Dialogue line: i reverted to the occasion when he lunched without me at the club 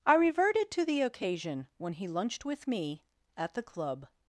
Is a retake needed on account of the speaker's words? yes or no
yes